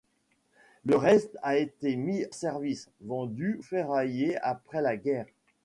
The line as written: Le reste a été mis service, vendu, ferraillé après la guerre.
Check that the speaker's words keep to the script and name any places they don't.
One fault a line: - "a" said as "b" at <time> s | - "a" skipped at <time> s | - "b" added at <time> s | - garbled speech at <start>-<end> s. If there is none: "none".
none